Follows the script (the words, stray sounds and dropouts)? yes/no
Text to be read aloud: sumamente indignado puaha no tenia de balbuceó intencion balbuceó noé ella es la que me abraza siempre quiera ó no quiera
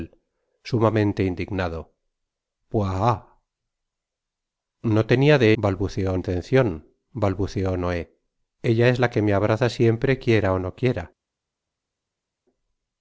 yes